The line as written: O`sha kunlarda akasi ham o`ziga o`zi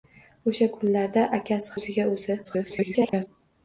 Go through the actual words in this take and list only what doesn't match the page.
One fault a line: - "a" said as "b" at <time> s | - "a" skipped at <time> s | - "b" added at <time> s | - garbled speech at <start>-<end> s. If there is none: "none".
- "ham" skipped at 1.8 s
- garbled speech at 2.4-3.3 s